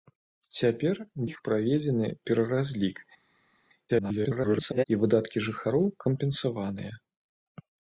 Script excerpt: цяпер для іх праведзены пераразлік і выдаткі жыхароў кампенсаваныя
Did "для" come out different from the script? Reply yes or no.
yes